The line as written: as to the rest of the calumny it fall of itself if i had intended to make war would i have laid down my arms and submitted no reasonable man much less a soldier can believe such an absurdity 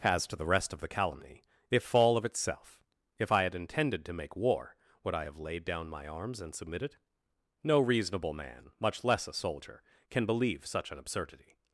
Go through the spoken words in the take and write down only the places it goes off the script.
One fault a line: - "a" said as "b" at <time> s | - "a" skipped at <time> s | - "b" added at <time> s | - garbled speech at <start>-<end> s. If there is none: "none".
none